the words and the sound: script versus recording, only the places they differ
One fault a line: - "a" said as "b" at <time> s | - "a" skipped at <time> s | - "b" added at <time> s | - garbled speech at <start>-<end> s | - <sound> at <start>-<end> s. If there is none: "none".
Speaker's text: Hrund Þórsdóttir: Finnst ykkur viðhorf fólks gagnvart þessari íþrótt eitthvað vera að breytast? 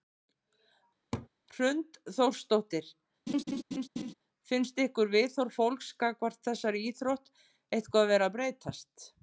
- laugh at 1.1-1.3 s
- laugh at 3.3-4.1 s